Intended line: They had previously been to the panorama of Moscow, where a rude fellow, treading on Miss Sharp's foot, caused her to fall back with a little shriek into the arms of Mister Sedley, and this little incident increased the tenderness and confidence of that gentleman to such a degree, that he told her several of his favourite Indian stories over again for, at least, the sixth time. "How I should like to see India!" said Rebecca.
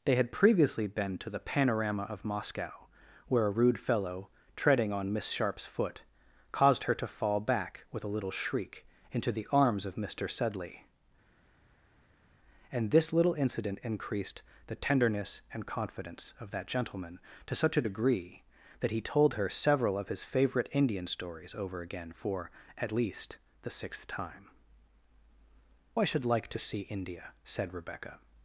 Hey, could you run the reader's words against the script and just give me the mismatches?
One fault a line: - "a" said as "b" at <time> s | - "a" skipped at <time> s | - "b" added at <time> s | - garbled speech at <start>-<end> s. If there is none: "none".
- "How" skipped at 24.5 s